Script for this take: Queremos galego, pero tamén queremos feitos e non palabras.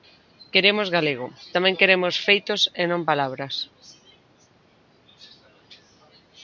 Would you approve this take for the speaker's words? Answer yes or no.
no